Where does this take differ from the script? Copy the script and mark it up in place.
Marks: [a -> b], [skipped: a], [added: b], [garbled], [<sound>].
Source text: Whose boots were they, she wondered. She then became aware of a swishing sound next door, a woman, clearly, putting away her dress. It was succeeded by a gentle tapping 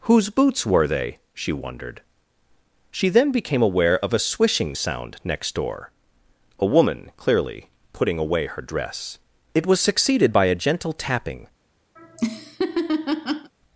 Whose boots were they, she wondered. She then became aware of a swishing sound next door, a woman, clearly, putting away her dress. It was succeeded by a gentle tapping [laugh]